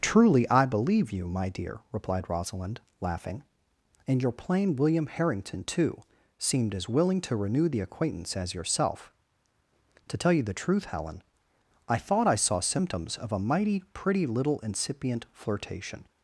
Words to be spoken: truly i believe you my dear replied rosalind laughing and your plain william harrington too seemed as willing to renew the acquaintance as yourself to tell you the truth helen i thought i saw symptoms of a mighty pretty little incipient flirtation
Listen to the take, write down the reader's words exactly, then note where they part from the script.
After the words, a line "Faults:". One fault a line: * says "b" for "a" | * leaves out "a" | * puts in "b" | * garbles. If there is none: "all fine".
truly i believe you my dear replied rosalind laughing and your plain william harrington too seemed as willing to renew the acquaintance as yourself to tell you the truth helen i thought i saw symptoms of a mighty pretty little incipient flirtation
Faults:
all fine